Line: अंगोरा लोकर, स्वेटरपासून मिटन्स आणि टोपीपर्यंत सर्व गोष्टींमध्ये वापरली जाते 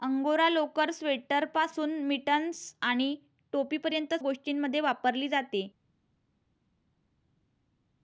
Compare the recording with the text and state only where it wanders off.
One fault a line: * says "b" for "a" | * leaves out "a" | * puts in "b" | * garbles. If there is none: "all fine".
* leaves out "सर्व"